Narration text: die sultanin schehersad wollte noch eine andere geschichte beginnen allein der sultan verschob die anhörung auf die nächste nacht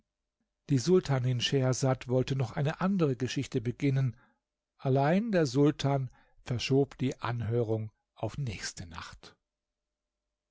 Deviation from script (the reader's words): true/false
true